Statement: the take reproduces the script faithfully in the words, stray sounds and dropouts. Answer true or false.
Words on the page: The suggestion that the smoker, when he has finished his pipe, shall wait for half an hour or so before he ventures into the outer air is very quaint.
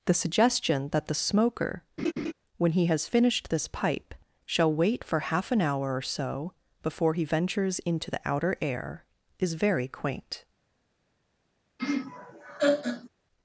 false